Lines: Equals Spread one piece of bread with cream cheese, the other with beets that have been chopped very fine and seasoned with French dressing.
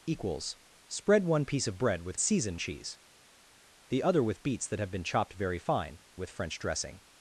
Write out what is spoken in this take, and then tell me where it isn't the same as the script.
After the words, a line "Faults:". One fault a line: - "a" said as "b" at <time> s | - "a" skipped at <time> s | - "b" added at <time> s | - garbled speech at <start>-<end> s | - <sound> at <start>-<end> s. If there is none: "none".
Equals Spread one piece of bread with seasoned cheese, the other with beets that have been chopped very fine with French dressing.
Faults:
- "cream" said as "seasoned" at 2.2 s
- "and seasoned" skipped at 6.0 s